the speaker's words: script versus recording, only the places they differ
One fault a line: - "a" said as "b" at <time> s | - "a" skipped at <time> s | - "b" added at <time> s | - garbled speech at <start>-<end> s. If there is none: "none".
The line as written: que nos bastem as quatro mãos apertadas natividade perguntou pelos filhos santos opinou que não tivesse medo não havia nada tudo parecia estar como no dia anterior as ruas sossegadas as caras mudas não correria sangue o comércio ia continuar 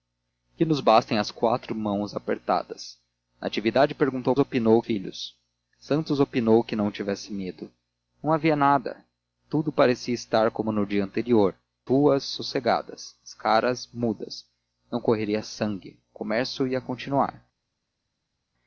- "pelos" said as "opinou" at 4.4 s
- "as" skipped at 11.6 s